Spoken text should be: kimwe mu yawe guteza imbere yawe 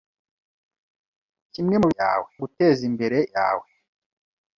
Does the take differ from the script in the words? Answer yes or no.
no